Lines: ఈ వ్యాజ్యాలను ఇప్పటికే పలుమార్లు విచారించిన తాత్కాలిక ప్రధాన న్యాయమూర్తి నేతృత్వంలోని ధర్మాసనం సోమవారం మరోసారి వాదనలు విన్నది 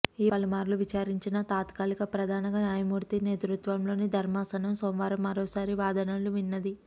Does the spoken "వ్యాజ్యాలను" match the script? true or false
false